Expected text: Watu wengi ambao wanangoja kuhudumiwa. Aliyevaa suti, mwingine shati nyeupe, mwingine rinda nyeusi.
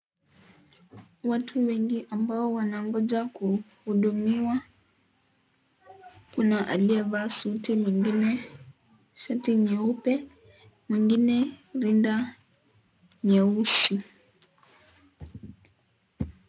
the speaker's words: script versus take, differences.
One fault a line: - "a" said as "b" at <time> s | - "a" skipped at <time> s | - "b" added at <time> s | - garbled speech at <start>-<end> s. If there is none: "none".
- "Kuna" added at 6.3 s